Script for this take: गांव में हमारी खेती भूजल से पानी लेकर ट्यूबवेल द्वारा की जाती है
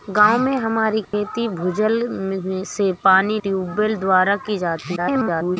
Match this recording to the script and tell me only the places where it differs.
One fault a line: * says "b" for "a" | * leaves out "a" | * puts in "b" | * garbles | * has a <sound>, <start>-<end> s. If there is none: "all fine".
* has a dropout, 1.0-1.1 s
* leaves out "लेकर"
* garbles